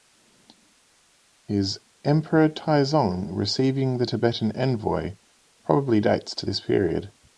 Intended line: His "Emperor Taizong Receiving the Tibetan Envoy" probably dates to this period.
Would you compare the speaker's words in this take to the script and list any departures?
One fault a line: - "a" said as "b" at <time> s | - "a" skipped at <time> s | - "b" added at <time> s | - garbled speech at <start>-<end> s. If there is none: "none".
none